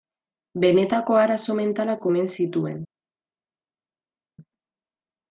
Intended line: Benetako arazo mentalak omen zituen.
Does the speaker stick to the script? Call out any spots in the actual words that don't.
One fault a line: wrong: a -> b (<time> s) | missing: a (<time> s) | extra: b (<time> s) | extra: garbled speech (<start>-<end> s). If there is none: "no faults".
no faults